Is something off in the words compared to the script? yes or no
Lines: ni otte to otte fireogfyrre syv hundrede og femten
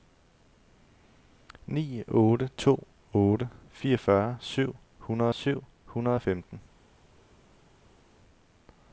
yes